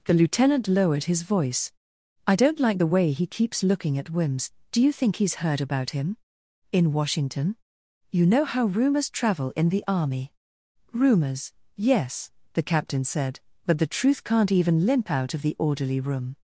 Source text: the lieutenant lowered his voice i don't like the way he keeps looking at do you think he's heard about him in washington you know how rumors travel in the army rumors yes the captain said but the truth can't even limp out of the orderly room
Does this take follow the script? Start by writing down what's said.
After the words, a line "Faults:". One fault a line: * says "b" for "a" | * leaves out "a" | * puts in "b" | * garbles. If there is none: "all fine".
the lieutenant lowered his voice i don't like the way he keeps looking at wims do you think he's heard about him in washington you know how rumors travel in the army rumors yes the captain said but the truth can't even limp out of the orderly room
Faults:
* puts in "wims"